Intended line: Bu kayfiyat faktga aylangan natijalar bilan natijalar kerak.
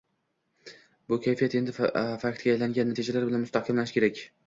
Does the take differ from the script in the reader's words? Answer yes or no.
yes